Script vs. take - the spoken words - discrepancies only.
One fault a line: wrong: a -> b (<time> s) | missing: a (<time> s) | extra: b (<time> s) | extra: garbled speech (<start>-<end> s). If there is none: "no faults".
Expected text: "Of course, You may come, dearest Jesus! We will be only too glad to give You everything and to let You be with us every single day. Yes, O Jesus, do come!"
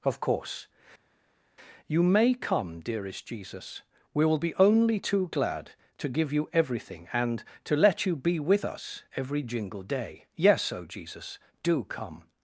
wrong: single -> jingle (9.4 s)